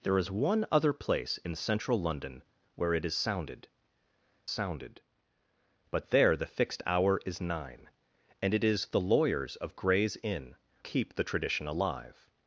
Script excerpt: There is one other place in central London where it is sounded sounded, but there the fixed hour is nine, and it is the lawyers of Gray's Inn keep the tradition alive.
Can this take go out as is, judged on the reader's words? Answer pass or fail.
pass